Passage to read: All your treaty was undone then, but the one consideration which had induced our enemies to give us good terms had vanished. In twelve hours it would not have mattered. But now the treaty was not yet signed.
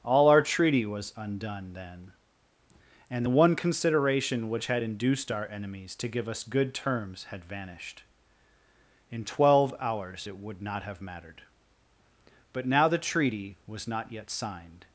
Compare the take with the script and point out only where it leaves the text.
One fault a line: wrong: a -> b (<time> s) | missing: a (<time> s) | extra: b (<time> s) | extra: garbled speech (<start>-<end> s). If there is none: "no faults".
wrong: your -> our (0.3 s)
wrong: but -> and (3.1 s)